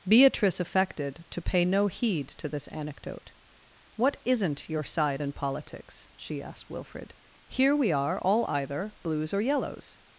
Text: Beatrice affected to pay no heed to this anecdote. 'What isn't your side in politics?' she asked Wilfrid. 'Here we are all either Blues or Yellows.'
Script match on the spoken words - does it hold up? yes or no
yes